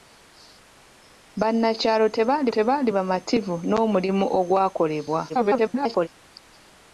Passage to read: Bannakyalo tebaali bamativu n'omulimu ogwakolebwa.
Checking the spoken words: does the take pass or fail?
fail